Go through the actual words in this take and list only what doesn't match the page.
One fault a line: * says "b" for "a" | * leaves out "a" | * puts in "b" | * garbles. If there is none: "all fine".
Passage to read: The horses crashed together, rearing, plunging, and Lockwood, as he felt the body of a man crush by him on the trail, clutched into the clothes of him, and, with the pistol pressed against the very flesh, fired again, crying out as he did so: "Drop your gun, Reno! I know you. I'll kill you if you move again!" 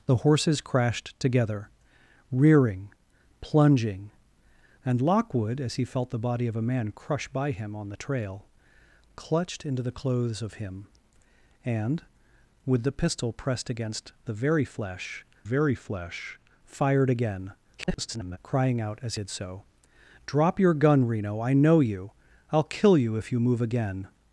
* puts in "very flesh"
* garbles
* leaves out "he"